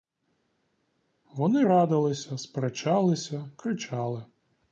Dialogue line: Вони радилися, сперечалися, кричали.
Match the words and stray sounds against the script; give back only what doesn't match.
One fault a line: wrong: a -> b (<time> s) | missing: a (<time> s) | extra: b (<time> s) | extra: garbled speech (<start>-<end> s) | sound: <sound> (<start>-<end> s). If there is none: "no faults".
no faults